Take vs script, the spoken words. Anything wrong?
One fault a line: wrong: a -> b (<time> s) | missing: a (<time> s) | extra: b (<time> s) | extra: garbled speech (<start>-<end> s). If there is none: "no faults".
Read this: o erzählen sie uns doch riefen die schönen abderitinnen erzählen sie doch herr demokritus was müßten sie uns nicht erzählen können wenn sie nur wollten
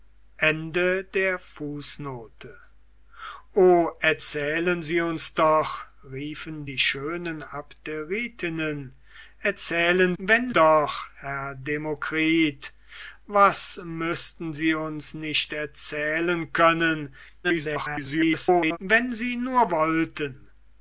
wrong: sie -> wenn (10.2 s)
extra: garbled speech (17.4-18.8 s)